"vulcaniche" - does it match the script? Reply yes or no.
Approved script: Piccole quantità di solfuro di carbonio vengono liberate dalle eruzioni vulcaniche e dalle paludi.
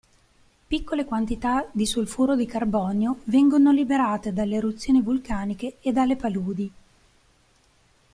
yes